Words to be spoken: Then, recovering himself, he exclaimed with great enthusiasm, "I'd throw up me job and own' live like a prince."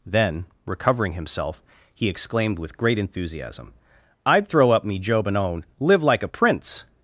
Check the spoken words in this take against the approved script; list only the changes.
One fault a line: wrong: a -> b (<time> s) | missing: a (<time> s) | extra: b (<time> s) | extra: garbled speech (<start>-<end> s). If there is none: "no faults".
no faults